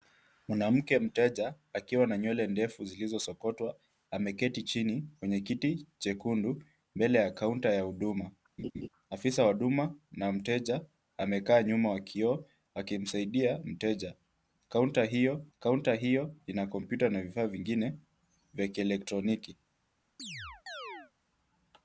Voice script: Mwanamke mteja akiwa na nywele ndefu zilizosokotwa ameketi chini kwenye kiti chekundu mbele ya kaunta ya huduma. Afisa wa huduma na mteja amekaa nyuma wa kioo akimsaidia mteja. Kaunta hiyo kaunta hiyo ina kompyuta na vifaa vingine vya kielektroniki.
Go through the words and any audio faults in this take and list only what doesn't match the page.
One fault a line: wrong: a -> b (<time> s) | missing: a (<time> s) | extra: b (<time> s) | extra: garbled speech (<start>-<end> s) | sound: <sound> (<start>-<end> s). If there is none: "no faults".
sound: laugh (8.6-8.9 s)
sound: chirp (20.2-21.1 s)